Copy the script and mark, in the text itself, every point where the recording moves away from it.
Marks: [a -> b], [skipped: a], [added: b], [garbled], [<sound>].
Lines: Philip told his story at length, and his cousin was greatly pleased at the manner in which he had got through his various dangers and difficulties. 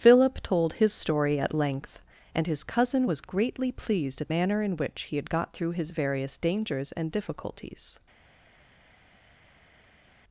Philip told his story at length, and his cousin was greatly pleased at [skipped: the] manner in which he had got through his various dangers and difficulties.